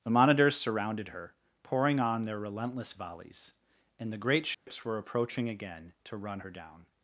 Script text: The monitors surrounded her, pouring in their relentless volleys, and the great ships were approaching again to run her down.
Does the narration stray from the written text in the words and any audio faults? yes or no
yes